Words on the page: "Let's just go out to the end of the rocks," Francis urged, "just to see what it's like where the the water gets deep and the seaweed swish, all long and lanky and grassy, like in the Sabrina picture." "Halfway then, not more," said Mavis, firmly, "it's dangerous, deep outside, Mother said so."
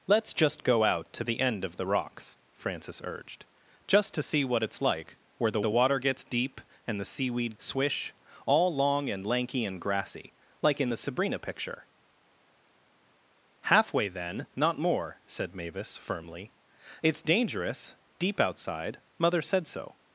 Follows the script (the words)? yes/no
yes